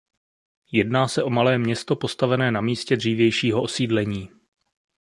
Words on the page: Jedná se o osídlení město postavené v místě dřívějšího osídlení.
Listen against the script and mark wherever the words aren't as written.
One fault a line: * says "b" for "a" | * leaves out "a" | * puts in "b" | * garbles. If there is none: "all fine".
* says "malé" for "osídlení"
* says "na" for "v"